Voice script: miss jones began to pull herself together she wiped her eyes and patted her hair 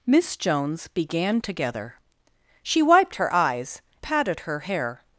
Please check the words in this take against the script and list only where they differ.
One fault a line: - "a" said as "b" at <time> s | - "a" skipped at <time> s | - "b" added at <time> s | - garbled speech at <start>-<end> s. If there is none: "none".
- "to pull herself" skipped at 1.4 s
- "and" skipped at 3.8 s